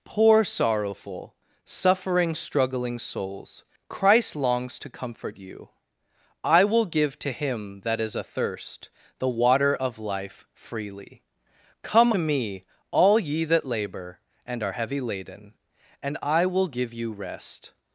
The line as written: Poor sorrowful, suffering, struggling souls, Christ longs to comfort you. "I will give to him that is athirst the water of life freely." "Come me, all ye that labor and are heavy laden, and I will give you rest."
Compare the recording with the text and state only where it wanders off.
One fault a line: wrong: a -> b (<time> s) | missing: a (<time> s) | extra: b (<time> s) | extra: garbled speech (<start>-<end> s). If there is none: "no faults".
no faults